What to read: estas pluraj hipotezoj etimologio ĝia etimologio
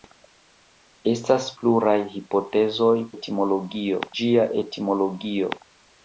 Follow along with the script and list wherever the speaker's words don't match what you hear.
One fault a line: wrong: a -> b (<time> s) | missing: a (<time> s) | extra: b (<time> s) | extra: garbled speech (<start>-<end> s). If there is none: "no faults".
no faults